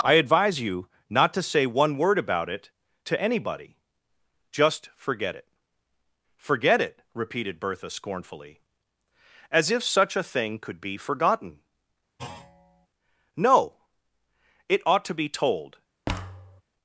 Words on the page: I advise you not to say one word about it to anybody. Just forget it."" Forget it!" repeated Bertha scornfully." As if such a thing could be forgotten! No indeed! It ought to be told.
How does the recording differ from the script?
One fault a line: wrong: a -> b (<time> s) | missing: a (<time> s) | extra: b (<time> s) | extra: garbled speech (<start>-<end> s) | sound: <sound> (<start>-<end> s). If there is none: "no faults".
sound: thud (12.2-12.9 s)
missing: indeed (13.8 s)
sound: thud (16.1-16.6 s)